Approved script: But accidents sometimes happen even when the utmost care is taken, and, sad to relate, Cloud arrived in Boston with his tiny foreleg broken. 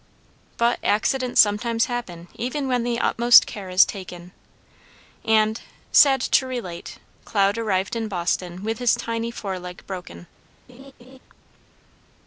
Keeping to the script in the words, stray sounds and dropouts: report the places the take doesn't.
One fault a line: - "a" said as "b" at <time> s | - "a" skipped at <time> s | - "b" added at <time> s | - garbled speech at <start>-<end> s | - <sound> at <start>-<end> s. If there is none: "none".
- laugh at 10.7-11.2 s